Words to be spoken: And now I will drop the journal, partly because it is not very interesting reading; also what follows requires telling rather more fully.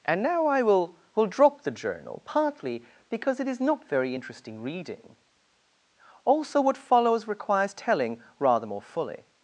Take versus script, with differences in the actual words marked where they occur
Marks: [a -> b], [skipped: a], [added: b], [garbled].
And now I will [added: will] drop the journal, partly because it is not very interesting reading; also what follows requires telling rather more fully.